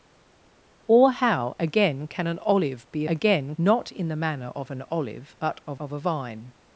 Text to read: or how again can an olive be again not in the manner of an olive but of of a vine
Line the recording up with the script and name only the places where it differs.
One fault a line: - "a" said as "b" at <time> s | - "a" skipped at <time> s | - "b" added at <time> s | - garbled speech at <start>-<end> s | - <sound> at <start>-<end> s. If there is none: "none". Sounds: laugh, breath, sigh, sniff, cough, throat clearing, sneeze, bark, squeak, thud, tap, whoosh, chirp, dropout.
none